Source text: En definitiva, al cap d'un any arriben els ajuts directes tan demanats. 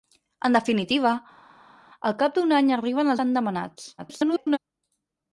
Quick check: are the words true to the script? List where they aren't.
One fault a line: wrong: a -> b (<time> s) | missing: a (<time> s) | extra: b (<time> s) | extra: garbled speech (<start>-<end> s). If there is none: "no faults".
missing: els ajuts directes (3.1 s)
extra: garbled speech (4.0-4.6 s)